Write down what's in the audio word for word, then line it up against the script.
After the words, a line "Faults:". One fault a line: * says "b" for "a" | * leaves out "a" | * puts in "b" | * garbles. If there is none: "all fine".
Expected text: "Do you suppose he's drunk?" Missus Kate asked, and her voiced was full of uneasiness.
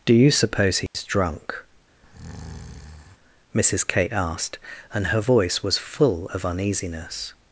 "Do you suppose he's drunk?" Missus Kate asked, and her voice was full of uneasiness.
Faults:
* says "voice" for "voiced"